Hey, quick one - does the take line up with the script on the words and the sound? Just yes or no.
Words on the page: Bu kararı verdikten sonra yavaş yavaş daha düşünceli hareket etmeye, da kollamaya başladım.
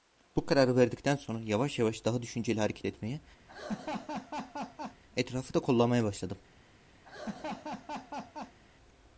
no